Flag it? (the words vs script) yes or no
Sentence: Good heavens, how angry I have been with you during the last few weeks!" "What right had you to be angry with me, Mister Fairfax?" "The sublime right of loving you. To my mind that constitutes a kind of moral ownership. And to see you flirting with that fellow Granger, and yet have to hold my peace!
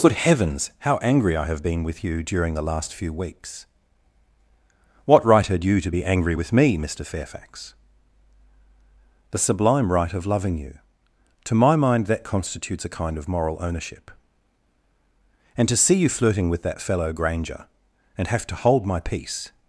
yes